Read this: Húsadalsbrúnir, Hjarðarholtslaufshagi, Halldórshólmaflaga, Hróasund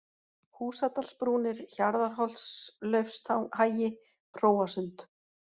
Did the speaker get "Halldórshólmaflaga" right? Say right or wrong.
wrong